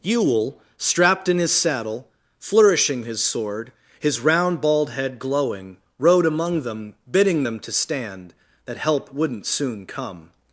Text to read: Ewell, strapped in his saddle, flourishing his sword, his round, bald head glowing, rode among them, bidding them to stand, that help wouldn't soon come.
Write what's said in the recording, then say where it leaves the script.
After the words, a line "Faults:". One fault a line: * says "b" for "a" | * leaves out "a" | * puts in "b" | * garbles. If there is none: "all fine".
Ewell, strapped in his saddle, flourishing his sword, his round, bald head glowing, rode among them, bidding them to stand, that help wouldn't soon come.
Faults:
all fine